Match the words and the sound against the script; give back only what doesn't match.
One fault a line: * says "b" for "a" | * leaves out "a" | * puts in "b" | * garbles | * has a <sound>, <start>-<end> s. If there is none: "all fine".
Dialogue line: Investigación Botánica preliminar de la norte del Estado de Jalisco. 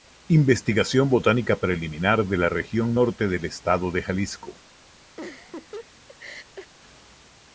* puts in "región"
* has a laugh, 5.2-6.7 s